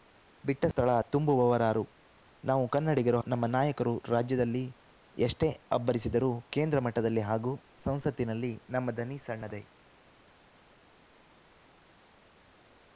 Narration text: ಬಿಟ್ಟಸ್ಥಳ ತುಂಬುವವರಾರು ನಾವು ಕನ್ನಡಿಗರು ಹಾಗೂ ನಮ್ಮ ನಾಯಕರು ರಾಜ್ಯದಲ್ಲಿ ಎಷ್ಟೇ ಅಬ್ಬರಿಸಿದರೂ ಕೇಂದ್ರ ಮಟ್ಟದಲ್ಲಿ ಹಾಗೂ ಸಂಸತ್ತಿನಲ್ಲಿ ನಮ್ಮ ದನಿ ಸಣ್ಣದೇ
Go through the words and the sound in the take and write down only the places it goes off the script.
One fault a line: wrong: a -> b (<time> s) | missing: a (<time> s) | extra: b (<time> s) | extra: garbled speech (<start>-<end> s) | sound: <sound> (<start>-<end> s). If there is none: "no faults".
missing: ಹಾಗೂ (3.2 s)